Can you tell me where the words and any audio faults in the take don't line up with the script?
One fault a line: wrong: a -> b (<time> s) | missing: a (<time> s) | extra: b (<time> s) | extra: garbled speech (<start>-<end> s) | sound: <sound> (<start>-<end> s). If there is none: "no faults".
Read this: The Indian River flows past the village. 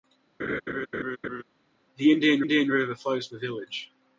sound: laugh (0.4-1.4 s)
extra: Indian (2.4 s)
missing: past (3.3 s)